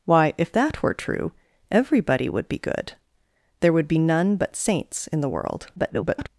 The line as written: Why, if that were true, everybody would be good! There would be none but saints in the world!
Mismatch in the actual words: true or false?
true